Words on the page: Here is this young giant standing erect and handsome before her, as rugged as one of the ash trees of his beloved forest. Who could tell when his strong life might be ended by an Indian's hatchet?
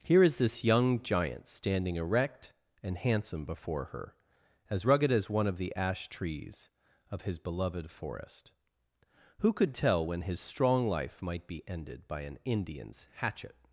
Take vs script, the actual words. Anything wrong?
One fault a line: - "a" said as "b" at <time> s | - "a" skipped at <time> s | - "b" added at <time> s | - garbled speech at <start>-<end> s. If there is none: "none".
none